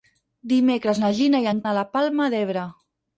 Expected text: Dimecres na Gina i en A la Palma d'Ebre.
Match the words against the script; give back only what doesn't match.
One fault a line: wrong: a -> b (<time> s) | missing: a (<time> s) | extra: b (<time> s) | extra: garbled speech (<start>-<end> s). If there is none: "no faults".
no faults